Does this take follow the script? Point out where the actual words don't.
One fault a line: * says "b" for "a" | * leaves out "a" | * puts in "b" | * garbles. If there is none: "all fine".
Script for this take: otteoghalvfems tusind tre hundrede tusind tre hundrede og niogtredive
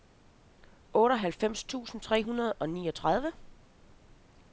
* leaves out "tusind tre hundrede"